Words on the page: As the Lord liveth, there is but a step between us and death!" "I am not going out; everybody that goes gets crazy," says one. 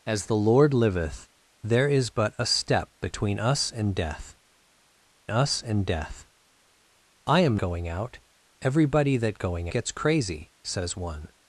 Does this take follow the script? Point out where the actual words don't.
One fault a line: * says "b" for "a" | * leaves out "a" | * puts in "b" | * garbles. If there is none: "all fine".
* puts in "us and death"
* leaves out "not"
* says "going" for "goes"